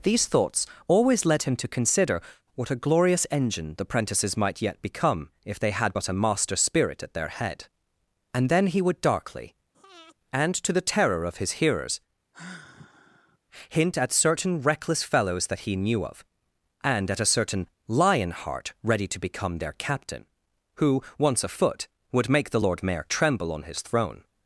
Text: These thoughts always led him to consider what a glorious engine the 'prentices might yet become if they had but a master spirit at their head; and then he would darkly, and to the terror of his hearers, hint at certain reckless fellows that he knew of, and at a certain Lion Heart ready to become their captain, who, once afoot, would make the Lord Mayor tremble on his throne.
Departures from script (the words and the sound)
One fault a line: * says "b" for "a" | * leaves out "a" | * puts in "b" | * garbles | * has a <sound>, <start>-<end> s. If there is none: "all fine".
* has a breath, 9.7-10.1 s
* has a sigh, 12.3-13.4 s